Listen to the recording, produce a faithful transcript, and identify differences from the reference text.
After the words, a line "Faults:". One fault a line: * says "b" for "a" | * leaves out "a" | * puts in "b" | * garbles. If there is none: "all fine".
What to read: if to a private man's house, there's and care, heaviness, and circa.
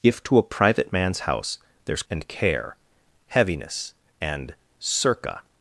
if to a private man's house, there's and care, heaviness, and circa.
Faults:
all fine